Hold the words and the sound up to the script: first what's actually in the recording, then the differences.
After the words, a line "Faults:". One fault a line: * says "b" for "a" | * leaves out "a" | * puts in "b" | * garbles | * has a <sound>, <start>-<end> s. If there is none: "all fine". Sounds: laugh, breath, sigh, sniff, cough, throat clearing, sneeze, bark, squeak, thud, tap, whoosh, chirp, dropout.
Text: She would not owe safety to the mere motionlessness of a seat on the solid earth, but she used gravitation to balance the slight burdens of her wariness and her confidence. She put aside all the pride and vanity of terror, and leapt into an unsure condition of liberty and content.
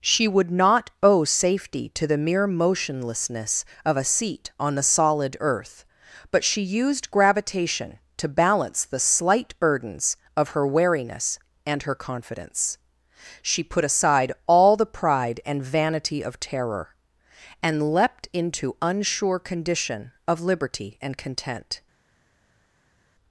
She would not owe safety to the mere motionlessness of a seat on the solid earth, but she used gravitation to balance the slight burdens of her wariness and her confidence. She put aside all the pride and vanity of terror, and leapt into unsure condition of liberty and content.
Faults:
* leaves out "an"